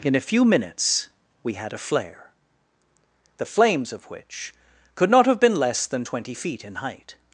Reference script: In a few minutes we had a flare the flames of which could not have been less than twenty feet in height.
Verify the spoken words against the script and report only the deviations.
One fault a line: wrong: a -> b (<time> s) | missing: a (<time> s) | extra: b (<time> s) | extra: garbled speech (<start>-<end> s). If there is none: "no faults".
no faults